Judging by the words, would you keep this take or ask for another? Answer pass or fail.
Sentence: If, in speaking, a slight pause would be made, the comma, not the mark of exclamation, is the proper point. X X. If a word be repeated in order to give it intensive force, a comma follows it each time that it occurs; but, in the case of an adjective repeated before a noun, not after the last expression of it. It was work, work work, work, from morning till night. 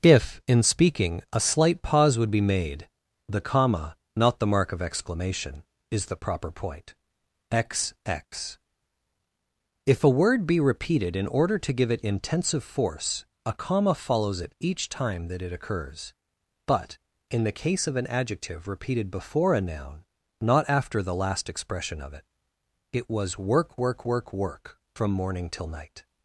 pass